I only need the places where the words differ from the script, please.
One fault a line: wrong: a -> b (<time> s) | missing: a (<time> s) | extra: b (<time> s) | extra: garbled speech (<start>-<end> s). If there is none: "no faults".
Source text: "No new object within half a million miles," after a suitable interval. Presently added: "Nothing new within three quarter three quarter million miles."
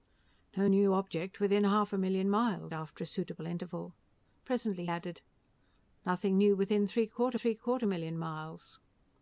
no faults